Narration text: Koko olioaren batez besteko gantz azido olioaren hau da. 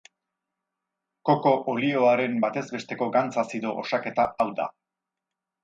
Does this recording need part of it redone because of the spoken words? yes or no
yes